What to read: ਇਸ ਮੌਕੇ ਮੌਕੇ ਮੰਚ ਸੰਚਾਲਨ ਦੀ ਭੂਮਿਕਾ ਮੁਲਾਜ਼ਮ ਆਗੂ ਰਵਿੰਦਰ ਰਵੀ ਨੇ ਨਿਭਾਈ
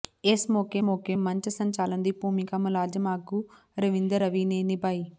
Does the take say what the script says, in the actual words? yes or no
yes